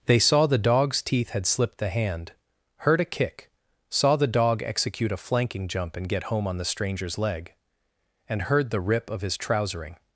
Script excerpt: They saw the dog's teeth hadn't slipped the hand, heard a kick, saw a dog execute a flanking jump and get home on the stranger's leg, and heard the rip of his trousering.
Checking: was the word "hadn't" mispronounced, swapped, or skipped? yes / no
yes